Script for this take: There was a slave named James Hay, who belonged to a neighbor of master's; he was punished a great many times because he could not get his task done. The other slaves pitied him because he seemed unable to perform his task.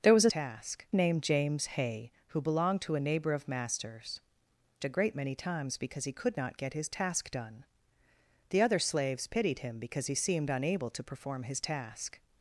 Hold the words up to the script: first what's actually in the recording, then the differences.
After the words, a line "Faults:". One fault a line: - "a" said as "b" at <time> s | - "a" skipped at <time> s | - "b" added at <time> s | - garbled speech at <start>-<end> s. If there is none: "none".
There was a task named James Hay, who belonged to a neighbor of master's; a great many times because he could not get his task done. The other slaves pitied him because he seemed unable to perform his task.
Faults:
- "slave" said as "task" at 0.3 s
- "he was punished" skipped at 4.2 s